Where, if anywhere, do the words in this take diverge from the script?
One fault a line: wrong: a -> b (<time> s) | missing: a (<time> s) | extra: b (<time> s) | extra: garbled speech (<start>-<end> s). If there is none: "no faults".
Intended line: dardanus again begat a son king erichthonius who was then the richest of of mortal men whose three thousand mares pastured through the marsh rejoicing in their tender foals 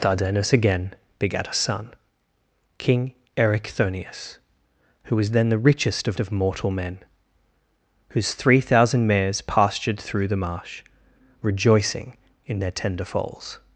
no faults